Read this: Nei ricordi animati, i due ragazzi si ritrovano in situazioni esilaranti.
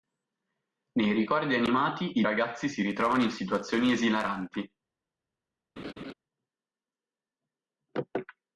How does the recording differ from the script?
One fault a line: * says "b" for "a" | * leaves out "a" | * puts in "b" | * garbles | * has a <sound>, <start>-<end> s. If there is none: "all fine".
* leaves out "due"
* has a laugh, 5.8-6.1 s